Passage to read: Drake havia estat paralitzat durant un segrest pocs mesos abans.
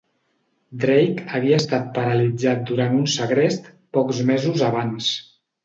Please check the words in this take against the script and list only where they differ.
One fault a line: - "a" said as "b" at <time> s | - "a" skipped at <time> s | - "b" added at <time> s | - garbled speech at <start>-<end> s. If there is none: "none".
none